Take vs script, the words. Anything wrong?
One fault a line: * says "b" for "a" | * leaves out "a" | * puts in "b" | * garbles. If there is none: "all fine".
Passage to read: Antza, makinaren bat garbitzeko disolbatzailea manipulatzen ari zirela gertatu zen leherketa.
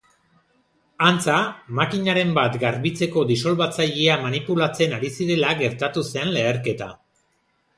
all fine